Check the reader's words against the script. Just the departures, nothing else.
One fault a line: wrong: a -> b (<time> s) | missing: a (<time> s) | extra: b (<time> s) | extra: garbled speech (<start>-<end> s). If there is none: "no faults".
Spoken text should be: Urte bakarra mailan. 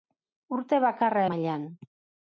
no faults